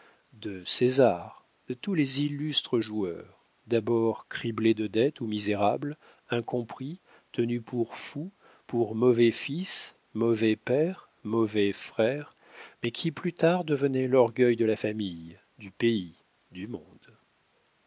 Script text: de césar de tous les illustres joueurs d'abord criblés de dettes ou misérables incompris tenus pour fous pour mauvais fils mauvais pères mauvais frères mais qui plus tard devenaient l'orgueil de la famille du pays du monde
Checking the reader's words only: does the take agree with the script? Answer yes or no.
yes